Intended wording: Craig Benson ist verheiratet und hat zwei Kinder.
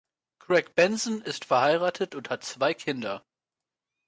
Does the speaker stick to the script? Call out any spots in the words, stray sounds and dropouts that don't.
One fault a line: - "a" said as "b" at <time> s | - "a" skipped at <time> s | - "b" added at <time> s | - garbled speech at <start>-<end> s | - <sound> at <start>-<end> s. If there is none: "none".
none